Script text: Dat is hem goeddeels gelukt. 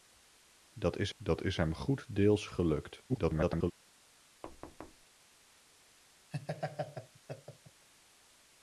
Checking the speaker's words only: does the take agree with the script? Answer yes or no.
no